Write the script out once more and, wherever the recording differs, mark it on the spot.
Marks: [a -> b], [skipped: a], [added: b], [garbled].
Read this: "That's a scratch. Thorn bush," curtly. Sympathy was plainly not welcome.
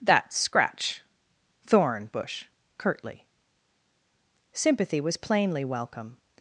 "That's [skipped: a] scratch. Thorn bush," curtly. Sympathy was plainly [skipped: not] welcome.